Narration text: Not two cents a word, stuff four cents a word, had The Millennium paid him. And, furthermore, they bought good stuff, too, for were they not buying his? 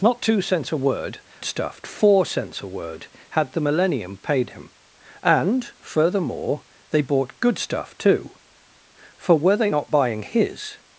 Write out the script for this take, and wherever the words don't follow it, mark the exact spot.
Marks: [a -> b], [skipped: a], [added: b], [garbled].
Not two cents a word, stuff four cents a word, had The Millennium paid him. And, furthermore, they bought good stuff, too, for were they not buying his?